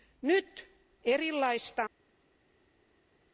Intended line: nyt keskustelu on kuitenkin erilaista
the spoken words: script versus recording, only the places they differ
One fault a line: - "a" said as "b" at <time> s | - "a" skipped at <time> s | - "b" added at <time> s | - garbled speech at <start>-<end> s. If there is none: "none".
- "keskustelu on kuitenkin" skipped at 0.7 s